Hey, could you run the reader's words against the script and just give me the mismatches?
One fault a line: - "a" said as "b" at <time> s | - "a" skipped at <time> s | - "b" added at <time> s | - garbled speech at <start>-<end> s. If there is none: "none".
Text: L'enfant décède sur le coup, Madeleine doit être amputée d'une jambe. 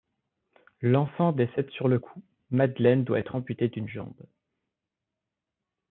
none